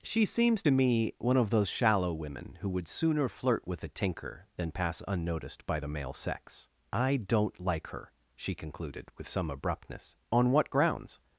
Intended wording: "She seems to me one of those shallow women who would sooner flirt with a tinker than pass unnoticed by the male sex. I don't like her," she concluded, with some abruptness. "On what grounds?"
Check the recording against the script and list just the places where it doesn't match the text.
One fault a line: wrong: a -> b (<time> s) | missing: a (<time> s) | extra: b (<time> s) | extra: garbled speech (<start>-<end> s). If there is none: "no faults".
no faults